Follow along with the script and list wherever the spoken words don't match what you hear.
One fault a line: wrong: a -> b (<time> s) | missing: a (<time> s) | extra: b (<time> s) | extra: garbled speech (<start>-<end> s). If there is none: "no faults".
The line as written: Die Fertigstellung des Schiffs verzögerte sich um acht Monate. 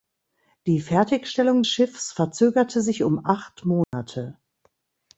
missing: des (1.6 s)